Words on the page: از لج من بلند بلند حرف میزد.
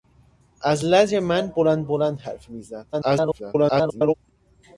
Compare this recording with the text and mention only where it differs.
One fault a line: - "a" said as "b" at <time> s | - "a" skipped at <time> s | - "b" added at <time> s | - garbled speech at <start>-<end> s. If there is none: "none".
- garbled speech at 2.9-4.1 s